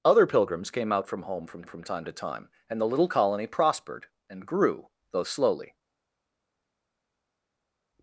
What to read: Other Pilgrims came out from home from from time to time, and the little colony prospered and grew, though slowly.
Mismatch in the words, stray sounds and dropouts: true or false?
false